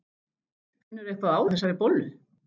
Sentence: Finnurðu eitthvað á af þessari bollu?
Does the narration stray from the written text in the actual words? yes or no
no